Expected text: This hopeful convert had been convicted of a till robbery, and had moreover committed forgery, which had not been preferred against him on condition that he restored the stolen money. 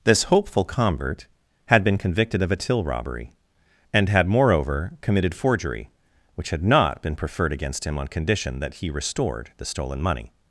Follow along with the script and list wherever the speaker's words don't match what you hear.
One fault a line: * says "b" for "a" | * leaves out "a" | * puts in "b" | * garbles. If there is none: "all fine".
all fine